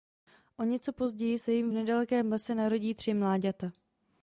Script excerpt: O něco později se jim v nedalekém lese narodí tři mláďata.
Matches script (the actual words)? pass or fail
pass